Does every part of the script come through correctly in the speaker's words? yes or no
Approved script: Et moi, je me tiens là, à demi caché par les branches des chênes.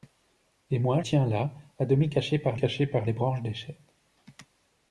no